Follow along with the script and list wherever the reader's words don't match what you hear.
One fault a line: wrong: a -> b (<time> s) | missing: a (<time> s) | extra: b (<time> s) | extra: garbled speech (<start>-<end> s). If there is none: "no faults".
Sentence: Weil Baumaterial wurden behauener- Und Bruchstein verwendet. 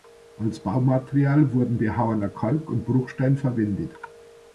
wrong: Weil -> Als (0.4 s)
extra: Kalk (2.3 s)